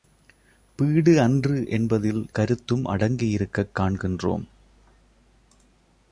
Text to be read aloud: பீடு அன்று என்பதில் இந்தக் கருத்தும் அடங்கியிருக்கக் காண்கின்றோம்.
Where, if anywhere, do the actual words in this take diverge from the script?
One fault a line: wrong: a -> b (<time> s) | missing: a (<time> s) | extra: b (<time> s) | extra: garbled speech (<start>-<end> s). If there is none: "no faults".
missing: இந்தக் (2.3 s)